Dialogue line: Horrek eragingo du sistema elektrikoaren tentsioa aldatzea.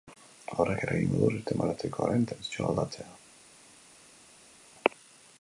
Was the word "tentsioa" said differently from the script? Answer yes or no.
no